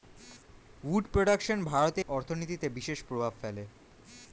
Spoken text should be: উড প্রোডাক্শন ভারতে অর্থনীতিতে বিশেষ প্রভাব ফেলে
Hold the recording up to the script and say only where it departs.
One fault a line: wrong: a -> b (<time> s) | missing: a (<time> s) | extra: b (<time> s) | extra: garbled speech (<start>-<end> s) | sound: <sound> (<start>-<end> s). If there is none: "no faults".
no faults